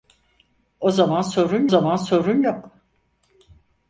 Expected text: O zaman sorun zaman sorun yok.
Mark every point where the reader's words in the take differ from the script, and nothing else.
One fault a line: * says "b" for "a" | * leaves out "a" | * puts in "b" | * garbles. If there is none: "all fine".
all fine